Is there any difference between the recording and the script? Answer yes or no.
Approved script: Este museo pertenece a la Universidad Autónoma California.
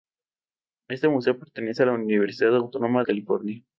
no